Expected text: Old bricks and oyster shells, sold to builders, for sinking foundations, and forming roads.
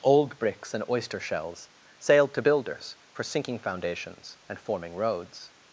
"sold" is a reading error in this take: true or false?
true